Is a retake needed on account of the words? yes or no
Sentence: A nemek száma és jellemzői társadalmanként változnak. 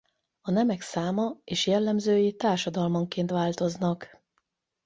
no